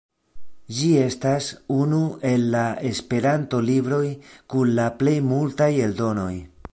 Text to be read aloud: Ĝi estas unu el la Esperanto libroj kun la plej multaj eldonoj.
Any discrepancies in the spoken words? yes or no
no